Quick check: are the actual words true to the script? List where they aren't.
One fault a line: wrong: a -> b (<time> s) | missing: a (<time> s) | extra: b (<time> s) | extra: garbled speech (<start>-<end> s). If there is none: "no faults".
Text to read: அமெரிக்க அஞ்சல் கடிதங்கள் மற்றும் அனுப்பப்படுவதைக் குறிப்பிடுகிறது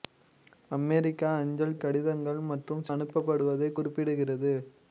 no faults